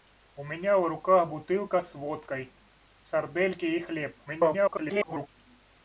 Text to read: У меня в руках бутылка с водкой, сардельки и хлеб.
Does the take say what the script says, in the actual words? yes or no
no